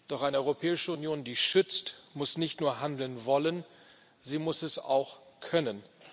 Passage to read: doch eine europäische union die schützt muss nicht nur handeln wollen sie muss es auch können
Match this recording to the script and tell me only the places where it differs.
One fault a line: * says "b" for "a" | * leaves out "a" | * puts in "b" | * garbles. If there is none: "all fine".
all fine